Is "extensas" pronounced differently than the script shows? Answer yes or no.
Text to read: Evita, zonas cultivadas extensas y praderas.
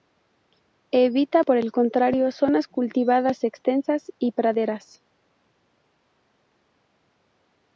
no